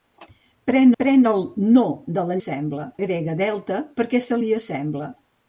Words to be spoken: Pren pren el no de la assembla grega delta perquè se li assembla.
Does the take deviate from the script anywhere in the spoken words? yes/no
no